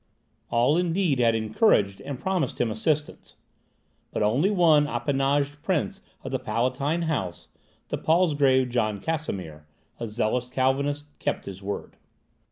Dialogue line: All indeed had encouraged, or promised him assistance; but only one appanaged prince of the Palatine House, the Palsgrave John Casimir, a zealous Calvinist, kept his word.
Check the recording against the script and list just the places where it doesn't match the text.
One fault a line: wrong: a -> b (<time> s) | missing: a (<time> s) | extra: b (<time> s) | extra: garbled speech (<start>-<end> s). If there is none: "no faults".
wrong: or -> and (2.0 s)